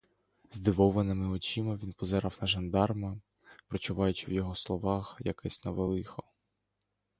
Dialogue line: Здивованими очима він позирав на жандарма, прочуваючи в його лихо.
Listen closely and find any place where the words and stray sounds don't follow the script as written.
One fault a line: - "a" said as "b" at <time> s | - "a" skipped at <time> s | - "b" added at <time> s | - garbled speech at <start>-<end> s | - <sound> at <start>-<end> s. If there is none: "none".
- "словах якесь нове" added at 4.5 s